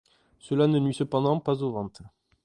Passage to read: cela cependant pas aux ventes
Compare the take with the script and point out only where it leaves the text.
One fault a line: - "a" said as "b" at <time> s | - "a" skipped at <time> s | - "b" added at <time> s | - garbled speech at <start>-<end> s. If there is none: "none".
- "ne nuit" added at 0.7 s